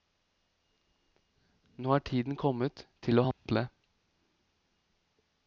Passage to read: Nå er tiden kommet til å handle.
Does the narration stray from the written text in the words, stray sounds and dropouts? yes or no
yes